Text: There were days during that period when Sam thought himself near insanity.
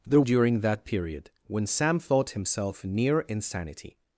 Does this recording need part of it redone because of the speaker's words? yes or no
yes